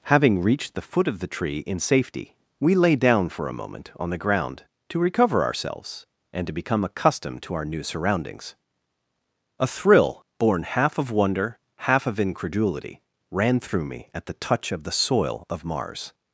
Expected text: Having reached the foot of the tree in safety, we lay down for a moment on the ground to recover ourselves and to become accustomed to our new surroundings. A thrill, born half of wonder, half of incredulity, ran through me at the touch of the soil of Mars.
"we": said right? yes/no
yes